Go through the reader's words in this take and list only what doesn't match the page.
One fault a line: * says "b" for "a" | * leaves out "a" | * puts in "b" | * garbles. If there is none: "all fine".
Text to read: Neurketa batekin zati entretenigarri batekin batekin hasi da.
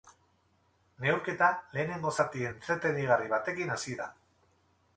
* says "lehenengo" for "batekin"
* leaves out "batekin"